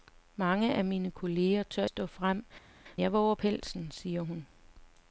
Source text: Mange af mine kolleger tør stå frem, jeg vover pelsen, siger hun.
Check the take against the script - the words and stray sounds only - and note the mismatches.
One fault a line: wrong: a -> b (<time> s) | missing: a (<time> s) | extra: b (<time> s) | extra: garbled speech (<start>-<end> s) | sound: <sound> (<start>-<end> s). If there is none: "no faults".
no faults